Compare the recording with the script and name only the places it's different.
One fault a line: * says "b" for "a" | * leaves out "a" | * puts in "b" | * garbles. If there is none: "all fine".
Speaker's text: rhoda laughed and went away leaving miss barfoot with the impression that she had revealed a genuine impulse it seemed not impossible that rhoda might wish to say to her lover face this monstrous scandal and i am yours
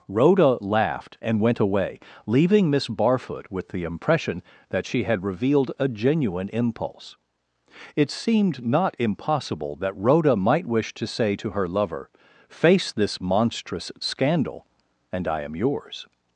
all fine